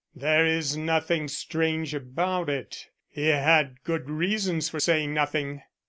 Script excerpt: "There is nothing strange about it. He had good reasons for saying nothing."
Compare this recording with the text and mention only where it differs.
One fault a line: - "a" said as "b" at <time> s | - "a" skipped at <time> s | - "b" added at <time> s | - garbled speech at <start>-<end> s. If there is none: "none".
none